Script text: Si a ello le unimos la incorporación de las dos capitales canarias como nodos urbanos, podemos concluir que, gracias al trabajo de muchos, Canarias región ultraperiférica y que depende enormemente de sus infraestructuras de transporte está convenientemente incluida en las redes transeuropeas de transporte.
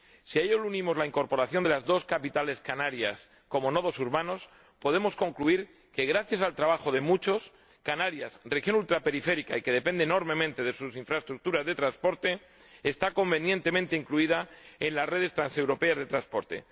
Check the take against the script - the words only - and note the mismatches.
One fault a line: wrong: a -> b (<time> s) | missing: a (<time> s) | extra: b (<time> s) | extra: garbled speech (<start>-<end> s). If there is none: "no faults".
no faults